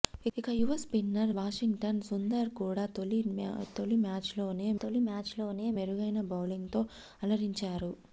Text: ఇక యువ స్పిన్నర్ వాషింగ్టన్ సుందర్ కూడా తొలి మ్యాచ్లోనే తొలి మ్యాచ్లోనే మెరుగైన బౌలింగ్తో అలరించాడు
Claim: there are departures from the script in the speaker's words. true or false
false